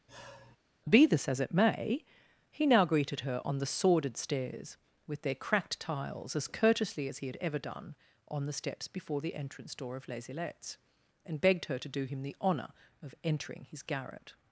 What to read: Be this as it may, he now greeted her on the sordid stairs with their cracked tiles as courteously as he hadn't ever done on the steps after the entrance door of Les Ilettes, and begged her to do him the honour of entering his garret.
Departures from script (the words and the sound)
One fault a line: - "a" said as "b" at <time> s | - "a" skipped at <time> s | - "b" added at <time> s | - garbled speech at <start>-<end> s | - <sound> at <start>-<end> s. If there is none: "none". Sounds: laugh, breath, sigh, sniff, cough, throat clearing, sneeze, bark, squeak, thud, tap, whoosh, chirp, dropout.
- sigh at 0.1-0.6 s
- "hadn't" said as "had" at 7.3 s
- "after" said as "before" at 8.9 s